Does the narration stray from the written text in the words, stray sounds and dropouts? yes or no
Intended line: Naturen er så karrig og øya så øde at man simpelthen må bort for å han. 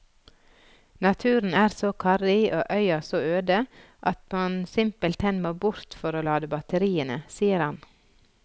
yes